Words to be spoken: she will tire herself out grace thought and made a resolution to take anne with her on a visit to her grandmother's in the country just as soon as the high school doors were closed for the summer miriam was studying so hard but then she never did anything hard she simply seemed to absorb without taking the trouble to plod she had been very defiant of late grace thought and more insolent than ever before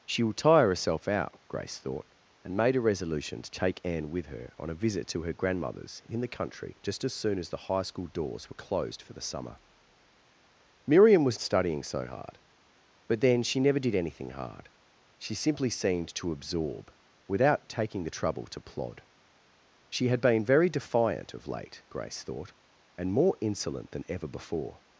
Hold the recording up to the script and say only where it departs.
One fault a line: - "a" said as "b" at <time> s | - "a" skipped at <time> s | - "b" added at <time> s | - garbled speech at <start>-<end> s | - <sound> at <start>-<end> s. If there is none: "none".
none